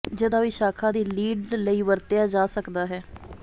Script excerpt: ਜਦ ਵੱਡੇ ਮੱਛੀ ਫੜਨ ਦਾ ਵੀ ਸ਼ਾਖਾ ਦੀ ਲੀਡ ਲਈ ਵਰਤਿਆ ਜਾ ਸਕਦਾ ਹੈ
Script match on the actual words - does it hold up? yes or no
no